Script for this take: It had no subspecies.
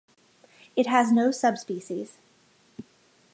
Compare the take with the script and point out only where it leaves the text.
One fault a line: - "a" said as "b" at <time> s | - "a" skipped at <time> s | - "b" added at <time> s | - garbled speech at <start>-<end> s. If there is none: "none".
- "had" said as "has" at 0.9 s